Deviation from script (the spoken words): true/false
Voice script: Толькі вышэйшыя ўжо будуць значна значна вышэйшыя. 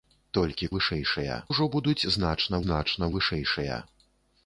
false